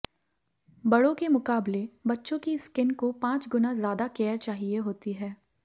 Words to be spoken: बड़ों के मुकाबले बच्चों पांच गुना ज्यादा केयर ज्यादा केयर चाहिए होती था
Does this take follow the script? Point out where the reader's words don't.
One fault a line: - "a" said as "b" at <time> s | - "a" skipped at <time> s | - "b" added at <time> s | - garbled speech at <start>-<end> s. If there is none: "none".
- "की स्किन को" added at 2.4 s
- "ज्यादा केयर" skipped at 4.4 s
- "था" said as "है" at 5.1 s